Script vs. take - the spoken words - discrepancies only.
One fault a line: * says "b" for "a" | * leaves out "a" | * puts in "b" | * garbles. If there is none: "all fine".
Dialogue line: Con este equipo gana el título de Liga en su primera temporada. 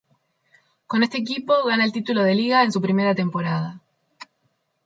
all fine